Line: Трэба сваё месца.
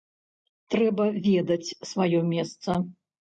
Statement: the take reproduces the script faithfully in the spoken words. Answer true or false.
false